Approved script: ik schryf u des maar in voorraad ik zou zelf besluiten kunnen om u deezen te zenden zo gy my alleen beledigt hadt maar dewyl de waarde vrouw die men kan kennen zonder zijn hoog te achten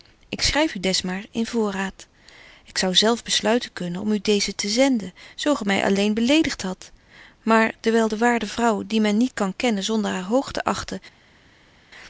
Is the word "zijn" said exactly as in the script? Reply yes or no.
no